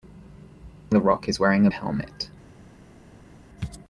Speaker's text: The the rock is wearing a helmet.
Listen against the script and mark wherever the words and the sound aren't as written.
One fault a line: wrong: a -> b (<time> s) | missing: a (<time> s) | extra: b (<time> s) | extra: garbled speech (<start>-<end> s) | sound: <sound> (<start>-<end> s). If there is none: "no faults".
no faults